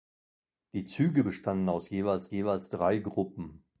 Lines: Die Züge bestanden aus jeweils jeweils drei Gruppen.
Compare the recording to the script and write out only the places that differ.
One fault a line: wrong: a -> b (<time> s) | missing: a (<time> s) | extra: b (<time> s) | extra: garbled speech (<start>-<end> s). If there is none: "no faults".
no faults